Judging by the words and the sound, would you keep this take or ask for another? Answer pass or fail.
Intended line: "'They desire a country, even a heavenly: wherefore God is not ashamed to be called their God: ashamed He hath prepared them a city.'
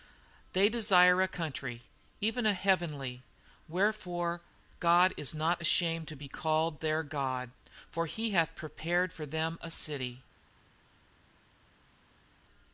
fail